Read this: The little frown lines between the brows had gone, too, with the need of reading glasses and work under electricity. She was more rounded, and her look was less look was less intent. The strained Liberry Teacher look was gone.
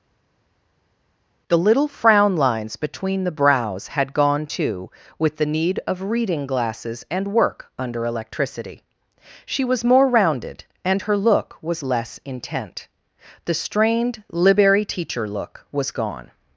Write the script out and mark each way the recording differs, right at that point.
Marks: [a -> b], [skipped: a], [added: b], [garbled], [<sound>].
The little frown lines between the brows had gone, too, with the need of reading glasses and work under electricity. She was more rounded, and her look was less [skipped: look was less] intent. The strained Liberry Teacher look was gone.